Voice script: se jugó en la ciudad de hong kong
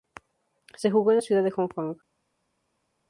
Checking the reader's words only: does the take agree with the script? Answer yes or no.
yes